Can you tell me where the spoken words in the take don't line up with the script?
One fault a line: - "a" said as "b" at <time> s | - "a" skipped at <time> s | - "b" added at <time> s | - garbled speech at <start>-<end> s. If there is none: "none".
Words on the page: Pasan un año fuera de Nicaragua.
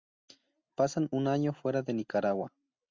none